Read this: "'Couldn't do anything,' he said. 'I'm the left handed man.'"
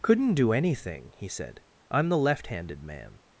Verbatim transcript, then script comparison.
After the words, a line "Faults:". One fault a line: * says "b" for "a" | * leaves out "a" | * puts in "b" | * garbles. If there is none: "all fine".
"'Couldn't do anything,' he said. 'I'm the left handed man.'"
Faults:
all fine